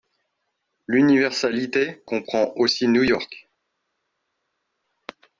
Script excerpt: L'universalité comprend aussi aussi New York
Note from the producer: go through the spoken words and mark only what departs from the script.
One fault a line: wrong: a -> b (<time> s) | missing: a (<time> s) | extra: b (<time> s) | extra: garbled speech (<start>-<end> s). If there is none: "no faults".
missing: aussi (2.9 s)